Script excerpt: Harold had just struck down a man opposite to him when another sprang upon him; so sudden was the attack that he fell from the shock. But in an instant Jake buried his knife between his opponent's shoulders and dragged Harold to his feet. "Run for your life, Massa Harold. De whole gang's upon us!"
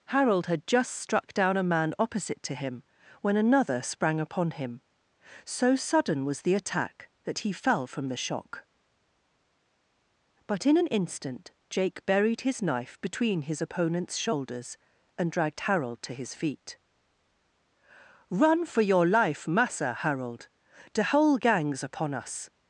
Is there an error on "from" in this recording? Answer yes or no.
no